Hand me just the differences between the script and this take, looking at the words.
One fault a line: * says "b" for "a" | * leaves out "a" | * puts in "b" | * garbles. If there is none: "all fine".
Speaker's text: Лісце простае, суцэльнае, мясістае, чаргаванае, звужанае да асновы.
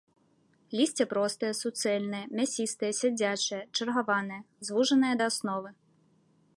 * puts in "сядзячае"